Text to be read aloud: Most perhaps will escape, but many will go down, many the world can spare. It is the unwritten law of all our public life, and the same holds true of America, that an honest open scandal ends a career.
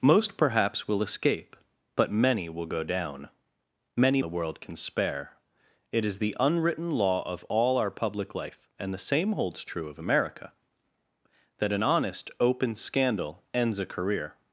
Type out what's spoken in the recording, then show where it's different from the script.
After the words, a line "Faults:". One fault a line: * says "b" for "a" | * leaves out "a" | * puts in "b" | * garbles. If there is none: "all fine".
Most perhaps will escape, but many will go down, many the world can spare. It is the unwritten law of all our public life, and the same holds true of America, that an honest open scandal ends a career.
Faults:
all fine